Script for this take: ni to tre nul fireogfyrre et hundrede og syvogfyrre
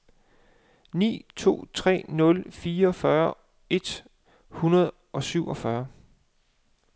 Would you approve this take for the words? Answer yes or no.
yes